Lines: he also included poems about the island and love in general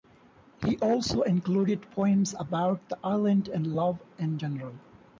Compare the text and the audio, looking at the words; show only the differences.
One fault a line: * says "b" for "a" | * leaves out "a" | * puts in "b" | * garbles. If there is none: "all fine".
all fine